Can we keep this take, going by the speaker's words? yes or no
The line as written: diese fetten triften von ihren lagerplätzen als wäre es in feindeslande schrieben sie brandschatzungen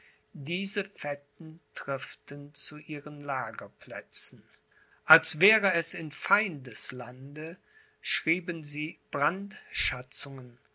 no